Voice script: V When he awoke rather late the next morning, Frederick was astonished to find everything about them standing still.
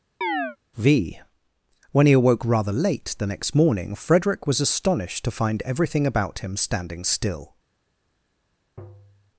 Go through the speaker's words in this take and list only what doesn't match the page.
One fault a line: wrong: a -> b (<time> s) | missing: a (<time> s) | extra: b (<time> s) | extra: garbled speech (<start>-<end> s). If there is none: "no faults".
wrong: them -> him (6.4 s)